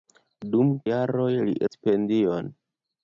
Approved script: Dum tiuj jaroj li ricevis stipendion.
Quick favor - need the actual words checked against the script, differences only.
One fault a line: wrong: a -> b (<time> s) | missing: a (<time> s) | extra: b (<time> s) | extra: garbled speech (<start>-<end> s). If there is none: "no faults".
missing: tiuj (0.7 s)
missing: ricevis (1.6 s)